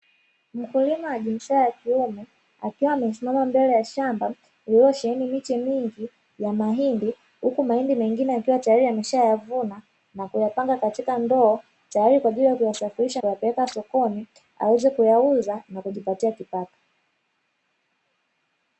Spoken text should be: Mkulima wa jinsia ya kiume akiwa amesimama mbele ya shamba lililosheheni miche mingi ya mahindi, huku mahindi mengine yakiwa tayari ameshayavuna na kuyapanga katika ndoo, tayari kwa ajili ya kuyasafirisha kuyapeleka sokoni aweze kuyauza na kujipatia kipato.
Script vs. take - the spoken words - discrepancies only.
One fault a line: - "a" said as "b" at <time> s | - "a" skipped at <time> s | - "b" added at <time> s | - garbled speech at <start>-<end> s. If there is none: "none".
none